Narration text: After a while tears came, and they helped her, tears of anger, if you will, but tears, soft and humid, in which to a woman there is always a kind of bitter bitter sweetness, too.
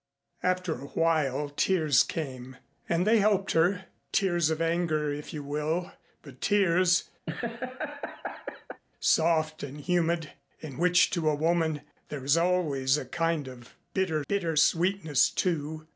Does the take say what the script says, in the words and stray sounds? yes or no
no